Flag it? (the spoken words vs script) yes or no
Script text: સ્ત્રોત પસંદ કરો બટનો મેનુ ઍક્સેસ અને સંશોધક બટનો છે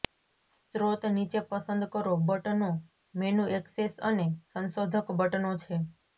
yes